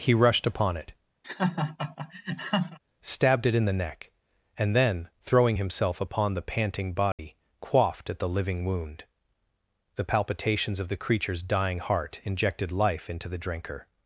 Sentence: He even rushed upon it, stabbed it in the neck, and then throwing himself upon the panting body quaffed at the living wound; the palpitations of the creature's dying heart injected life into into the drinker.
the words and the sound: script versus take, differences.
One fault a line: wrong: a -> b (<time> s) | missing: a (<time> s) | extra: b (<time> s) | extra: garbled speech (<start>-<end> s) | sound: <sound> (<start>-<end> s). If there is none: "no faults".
missing: even (0.1 s)
sound: laugh (1.2-2.8 s)
sound: dropout (7.1-7.2 s)
missing: into (13.3 s)